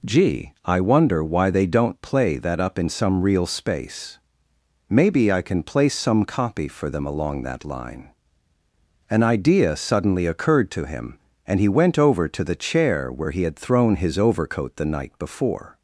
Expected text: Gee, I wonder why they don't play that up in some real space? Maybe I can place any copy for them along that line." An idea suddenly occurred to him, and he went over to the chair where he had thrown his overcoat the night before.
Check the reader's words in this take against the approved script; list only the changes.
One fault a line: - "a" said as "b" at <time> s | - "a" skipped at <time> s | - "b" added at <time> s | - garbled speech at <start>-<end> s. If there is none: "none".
- "any" said as "some" at 5.9 s